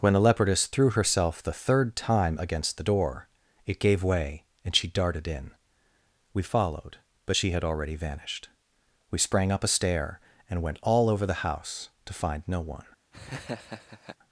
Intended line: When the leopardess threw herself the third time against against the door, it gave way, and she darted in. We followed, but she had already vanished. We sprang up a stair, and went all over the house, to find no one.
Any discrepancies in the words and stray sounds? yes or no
yes